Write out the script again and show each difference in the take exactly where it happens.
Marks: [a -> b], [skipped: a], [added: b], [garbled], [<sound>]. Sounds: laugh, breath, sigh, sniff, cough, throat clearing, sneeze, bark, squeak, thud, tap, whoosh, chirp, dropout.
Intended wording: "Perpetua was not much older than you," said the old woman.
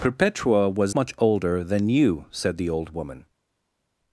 "Perpetua was [skipped: not] much older than you," said the old woman.